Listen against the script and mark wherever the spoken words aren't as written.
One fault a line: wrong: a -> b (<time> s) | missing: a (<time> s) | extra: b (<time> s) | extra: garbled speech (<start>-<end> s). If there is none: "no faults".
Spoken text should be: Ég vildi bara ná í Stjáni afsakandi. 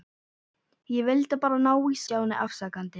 no faults